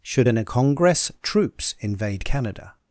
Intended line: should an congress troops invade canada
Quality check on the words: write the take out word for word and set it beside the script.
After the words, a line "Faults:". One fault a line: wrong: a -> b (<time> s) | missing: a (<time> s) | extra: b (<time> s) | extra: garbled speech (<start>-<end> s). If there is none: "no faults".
should an congress troops invade canada
Faults:
no faults